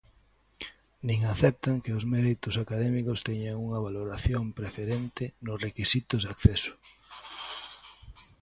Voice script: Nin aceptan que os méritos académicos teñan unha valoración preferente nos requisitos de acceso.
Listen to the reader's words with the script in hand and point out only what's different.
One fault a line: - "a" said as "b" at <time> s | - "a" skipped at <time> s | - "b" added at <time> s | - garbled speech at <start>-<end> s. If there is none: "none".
none